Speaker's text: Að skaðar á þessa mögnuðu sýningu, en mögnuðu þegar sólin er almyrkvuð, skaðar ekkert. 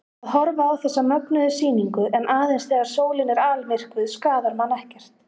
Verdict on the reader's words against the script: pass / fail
fail